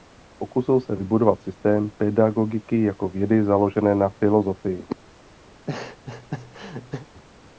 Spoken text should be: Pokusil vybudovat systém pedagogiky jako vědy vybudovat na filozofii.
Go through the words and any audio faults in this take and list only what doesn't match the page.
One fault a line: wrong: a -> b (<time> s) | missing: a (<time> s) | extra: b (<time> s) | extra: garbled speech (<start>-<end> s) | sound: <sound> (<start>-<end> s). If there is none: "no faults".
extra: se (0.8 s)
wrong: vybudovat -> založené (3.4 s)
sound: laugh (5.5-7.1 s)